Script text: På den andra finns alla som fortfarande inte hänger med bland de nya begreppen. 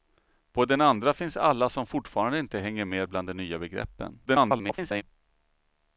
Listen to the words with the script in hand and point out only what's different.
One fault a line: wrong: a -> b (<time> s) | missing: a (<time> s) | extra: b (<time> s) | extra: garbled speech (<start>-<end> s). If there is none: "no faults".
extra: garbled speech (4.3-5.0 s)